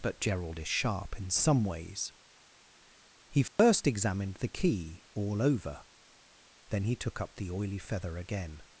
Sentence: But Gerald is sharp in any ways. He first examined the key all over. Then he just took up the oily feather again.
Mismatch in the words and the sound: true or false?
true